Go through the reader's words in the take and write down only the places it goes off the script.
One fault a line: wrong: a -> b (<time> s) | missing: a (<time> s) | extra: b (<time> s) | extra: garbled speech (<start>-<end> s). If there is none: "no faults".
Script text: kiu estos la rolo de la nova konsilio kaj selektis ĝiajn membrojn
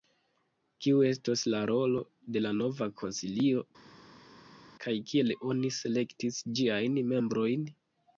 extra: kiel oni (5.1 s)